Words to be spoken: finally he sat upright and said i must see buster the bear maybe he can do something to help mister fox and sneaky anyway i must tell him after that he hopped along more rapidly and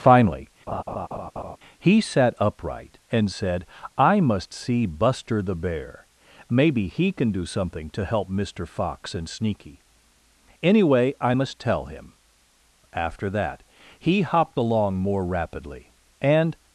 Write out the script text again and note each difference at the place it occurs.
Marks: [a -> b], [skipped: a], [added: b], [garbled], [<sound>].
finally [laugh] he sat upright and said i must see buster the bear maybe he can do something to help mister fox and sneaky anyway i must tell him after that he hopped along more rapidly and